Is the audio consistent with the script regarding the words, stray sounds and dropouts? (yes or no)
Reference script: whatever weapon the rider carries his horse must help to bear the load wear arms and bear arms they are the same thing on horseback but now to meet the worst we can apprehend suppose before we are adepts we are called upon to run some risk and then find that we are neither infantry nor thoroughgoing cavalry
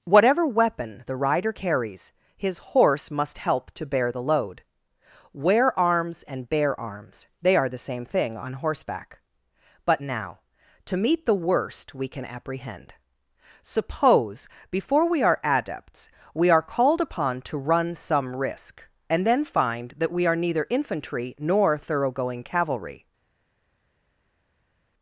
yes